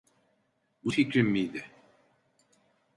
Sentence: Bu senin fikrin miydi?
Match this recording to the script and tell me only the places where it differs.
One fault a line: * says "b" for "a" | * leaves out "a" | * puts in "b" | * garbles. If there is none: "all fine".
* leaves out "senin"